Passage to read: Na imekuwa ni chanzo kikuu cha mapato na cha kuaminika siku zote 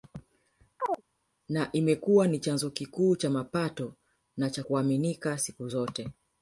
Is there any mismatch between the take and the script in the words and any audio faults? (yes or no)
yes